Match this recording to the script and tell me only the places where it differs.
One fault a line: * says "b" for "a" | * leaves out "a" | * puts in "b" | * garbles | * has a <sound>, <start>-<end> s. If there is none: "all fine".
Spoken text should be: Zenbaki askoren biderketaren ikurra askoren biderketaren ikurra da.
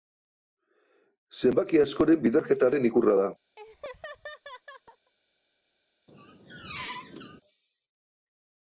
* leaves out "askoren biderketaren ikurra"
* has a laugh, 3.6-5.1 s
* has a squeak, 6.1-7.4 s